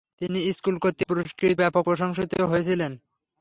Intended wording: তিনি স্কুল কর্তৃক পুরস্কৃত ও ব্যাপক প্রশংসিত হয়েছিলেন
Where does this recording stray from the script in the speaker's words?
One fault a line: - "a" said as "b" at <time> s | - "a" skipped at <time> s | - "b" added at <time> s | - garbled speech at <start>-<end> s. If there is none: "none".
- "ও" skipped at 1.6 s